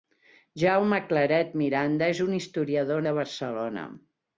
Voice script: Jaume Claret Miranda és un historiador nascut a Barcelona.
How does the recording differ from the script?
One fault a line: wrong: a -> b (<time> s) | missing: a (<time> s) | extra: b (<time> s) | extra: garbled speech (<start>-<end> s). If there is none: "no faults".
missing: nascut (3.0 s)